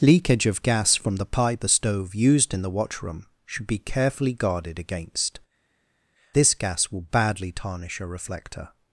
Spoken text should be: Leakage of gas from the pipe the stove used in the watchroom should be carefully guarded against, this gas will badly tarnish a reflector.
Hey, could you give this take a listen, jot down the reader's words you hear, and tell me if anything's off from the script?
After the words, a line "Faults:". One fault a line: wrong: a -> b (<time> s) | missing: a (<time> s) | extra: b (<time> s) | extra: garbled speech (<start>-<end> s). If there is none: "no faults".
Leakage of gas from the pipe the stove used in the watchroom should be carefully guarded against, this gas will badly tarnish a reflector.
Faults:
no faults